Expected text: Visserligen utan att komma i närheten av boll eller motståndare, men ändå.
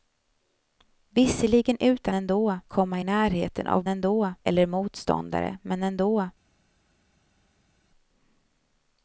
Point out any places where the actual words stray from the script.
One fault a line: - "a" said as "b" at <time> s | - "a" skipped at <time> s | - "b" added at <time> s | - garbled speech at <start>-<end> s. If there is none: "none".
- "att" said as "ändå" at 2.1 s
- "boll" said as "ändå" at 3.9 s